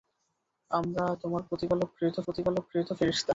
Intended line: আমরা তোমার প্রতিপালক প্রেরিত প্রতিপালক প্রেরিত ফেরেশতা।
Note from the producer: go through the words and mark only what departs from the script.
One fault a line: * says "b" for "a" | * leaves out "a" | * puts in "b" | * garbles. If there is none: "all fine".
all fine